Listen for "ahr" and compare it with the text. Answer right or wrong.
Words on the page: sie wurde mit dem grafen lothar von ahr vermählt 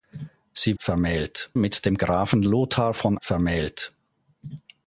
wrong